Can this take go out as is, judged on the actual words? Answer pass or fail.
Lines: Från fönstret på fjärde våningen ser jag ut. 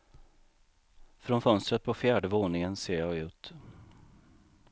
pass